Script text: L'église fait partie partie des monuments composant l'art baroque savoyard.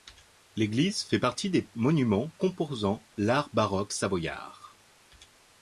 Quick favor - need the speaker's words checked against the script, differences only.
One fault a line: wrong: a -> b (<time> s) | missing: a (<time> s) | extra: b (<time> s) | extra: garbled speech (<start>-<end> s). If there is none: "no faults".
missing: partie (1.5 s)